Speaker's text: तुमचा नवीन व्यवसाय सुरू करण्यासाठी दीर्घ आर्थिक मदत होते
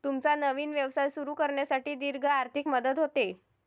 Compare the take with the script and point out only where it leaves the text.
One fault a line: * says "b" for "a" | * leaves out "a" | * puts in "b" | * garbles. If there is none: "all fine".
all fine